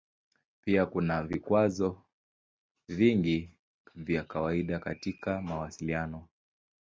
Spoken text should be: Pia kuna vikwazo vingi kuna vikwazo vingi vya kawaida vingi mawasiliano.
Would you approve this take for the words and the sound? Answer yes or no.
no